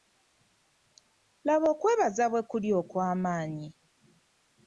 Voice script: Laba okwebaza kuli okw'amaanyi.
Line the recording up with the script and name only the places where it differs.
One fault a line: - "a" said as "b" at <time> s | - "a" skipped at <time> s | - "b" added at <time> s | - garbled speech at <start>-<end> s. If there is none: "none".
- "bwe" added at 2.3 s